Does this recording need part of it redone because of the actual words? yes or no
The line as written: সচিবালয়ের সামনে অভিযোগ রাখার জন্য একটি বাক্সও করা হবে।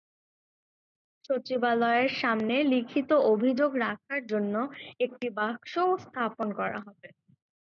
yes